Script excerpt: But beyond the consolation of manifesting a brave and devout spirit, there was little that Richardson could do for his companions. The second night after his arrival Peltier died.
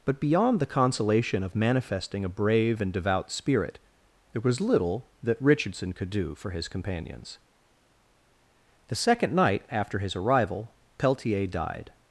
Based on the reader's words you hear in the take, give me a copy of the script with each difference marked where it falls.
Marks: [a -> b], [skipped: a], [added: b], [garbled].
But beyond the consolation of manifesting a brave and devout spirit, there was little that Richardson could do for his companions. The second night after his arrival Peltier died.